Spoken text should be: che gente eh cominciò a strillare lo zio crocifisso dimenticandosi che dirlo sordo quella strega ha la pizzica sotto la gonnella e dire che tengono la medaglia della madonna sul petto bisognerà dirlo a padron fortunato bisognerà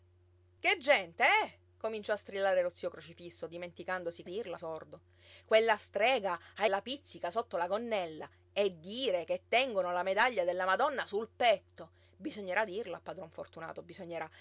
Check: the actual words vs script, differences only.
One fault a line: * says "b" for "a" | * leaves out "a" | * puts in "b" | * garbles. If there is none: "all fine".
all fine